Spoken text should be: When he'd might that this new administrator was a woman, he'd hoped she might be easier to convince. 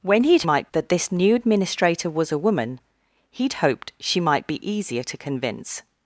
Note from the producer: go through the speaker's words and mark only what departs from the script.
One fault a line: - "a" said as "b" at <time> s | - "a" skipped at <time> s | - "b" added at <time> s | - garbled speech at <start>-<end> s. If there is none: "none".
none